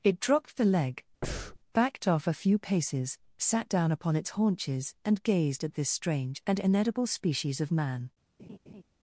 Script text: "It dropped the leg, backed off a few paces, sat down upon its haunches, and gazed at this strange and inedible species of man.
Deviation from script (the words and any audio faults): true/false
true